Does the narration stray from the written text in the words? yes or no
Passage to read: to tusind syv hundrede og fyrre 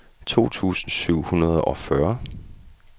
no